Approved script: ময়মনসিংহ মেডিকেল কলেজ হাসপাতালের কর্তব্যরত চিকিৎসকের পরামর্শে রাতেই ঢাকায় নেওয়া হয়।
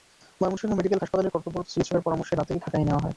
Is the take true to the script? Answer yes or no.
no